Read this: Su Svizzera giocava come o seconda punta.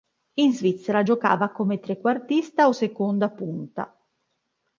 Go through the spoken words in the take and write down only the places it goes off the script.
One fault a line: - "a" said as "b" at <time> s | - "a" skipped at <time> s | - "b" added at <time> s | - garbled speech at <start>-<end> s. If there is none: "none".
- "Su" said as "In" at 0.3 s
- "trequartista" added at 1.8 s